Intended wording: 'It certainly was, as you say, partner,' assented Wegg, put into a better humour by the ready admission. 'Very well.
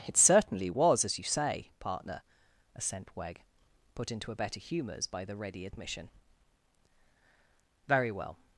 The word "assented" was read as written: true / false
false